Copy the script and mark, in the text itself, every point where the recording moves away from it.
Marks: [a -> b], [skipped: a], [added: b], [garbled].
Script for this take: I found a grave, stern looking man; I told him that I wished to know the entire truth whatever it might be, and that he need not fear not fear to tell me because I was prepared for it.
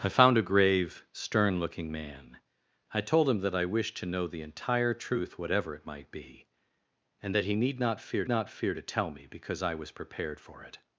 I found a grave, stern looking man; I told him that I wished to know the entire truth whatever it might be, and that he need not fear not fear to tell me because I was prepared for it.